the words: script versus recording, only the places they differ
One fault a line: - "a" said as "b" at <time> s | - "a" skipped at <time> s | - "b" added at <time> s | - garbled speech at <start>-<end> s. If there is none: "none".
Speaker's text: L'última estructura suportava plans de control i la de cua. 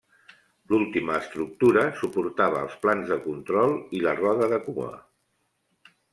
- "els" added at 2.7 s
- "roda" added at 4.2 s